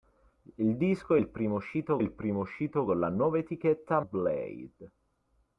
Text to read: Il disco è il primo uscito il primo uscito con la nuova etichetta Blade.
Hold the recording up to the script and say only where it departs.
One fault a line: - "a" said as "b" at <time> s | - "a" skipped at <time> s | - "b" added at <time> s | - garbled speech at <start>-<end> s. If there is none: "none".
none